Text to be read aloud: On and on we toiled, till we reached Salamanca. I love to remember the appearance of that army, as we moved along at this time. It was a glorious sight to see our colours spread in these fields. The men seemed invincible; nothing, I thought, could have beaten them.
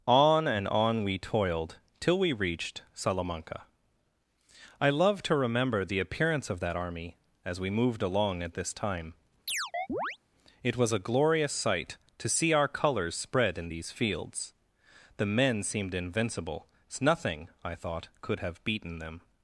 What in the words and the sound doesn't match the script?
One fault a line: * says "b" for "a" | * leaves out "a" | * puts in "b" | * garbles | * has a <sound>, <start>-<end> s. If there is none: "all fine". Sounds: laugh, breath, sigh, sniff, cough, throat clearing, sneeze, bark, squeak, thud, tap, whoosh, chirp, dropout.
* has a chirp, 9.5-10.2 s